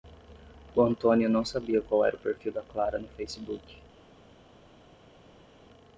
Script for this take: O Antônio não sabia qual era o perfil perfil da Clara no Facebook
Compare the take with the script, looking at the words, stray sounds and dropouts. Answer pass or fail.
fail